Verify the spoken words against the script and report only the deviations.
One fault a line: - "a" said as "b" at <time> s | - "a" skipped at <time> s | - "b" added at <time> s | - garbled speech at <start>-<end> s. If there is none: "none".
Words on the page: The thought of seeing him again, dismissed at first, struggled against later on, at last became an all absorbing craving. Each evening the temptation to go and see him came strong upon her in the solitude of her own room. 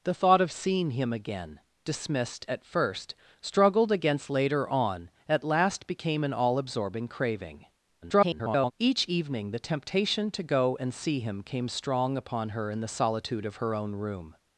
- garbled speech at 8.0-8.7 s